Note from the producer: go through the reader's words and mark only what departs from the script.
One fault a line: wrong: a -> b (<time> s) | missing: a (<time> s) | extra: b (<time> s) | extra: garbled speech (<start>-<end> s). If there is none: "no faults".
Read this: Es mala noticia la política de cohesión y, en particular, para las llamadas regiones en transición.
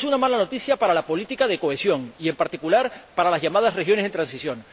extra: una (0.1 s)
extra: para (0.8 s)